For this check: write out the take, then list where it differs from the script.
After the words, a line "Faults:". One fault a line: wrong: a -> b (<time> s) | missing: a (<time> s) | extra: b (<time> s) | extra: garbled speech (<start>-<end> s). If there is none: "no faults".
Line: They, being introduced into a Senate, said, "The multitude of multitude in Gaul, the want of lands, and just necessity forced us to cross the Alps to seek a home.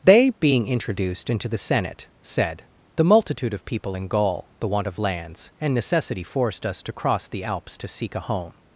They, being introduced into the Senate, said, "The multitude of people in Gaul, the want of lands, and necessity forced us to cross the Alps to seek a home.
Faults:
wrong: a -> the (1.5 s)
wrong: multitude -> people (3.6 s)
missing: just (5.7 s)